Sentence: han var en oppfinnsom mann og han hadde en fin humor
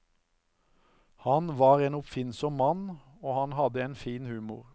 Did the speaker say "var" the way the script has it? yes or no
yes